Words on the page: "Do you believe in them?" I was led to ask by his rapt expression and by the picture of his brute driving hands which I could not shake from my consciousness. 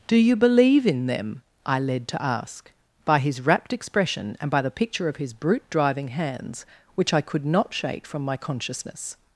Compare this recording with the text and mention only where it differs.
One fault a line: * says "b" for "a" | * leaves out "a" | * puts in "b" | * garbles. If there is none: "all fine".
* leaves out "was"